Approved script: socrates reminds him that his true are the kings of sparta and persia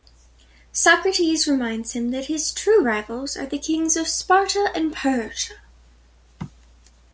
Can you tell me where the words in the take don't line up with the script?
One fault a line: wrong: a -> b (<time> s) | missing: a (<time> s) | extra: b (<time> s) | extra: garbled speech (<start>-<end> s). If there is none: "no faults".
extra: rivals (2.8 s)